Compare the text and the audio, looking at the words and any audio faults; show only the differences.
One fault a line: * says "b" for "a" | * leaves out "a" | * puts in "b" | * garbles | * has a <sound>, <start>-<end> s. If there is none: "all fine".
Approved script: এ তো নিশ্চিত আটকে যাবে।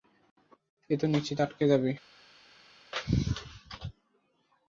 all fine